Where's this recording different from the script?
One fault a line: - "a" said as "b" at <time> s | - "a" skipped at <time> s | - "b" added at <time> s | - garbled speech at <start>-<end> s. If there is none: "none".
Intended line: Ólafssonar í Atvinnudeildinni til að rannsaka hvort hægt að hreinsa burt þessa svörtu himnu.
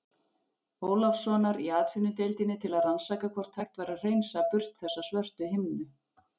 - "væri" added at 3.8 s